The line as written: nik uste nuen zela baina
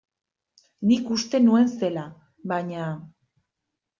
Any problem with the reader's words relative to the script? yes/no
no